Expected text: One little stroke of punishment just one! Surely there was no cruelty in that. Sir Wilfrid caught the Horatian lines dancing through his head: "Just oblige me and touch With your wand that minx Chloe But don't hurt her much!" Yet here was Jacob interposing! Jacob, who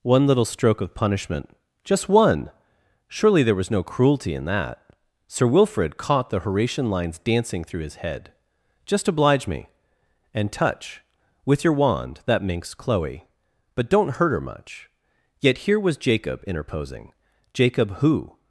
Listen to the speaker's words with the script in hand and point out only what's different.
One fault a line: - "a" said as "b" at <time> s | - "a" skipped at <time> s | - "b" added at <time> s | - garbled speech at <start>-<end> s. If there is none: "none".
none